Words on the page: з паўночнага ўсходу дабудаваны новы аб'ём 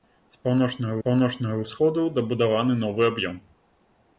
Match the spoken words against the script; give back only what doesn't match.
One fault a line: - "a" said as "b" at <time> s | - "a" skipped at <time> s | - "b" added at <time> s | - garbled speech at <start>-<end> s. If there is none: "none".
- "паўночнага" added at 1.1 s